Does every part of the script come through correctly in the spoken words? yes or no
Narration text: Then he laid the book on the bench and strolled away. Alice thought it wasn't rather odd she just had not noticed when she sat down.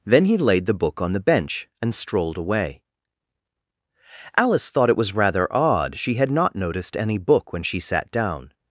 no